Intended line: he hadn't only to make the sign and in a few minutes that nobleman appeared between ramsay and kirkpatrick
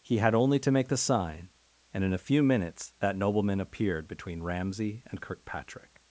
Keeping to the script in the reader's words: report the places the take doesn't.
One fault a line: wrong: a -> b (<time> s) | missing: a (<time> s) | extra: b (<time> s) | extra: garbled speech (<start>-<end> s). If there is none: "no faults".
wrong: hadn't -> had (0.2 s)